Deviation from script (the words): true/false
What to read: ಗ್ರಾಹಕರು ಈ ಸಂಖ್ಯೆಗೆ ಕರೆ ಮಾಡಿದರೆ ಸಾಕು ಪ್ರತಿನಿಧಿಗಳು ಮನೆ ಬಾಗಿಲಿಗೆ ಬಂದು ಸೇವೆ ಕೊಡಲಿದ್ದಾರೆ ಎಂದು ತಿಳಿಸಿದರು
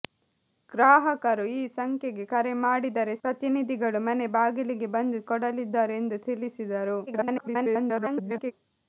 true